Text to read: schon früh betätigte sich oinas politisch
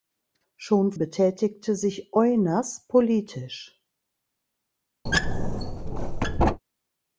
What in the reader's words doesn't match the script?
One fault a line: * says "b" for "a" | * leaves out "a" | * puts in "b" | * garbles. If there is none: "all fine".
* leaves out "früh"